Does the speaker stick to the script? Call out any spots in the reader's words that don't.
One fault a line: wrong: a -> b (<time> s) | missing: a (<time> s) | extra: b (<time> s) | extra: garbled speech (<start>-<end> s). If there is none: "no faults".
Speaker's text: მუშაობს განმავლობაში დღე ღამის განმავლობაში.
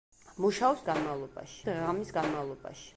no faults